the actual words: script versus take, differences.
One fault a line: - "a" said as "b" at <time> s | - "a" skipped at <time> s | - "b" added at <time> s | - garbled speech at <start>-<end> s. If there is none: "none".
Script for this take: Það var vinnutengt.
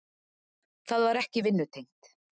- "ekki" added at 1.2 s